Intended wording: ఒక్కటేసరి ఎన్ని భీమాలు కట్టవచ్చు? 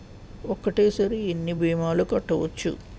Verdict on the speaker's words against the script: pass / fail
pass